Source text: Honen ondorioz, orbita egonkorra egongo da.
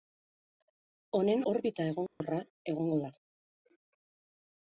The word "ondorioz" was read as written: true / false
false